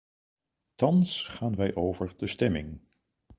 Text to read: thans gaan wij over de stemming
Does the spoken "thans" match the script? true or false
true